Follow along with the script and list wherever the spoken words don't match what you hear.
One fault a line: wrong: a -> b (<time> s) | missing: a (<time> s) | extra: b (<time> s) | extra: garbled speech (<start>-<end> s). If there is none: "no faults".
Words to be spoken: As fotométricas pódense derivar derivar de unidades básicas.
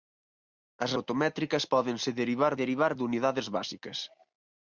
no faults